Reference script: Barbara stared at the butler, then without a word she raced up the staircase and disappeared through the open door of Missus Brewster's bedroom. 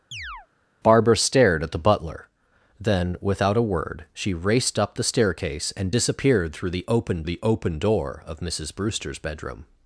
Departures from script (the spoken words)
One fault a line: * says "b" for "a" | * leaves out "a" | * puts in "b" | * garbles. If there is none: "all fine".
* puts in "the open"